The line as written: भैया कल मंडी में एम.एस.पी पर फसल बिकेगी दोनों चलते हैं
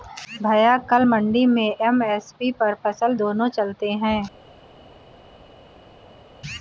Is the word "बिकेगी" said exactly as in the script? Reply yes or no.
no